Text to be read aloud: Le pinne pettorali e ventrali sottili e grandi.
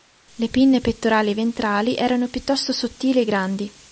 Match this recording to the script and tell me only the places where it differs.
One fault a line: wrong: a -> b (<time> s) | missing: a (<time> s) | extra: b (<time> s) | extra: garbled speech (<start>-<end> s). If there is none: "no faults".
extra: erano piuttosto (1.9 s)